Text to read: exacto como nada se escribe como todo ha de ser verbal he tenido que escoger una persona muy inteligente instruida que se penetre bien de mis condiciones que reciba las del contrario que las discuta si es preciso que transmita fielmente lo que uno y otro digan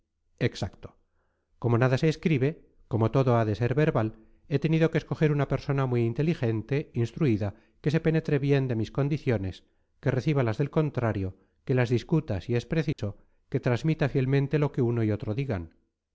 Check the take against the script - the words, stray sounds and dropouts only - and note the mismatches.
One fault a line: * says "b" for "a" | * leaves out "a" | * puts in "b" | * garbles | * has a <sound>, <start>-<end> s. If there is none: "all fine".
* has a dropout, 12.9-13.0 s